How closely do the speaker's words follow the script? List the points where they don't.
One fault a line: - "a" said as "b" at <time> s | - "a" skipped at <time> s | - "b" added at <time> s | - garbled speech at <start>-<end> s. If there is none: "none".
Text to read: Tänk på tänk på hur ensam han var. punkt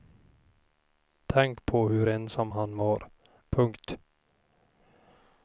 - "tänk på" skipped at 1.9 s